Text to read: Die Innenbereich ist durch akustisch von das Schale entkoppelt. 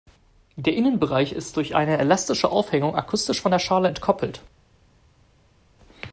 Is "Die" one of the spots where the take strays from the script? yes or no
yes